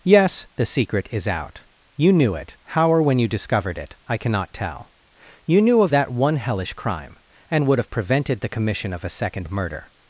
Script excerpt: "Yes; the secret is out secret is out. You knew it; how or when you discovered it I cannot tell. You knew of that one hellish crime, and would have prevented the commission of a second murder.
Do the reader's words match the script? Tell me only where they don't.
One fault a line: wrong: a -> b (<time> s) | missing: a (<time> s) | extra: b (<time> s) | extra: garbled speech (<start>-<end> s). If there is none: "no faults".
missing: secret is out (1.6 s)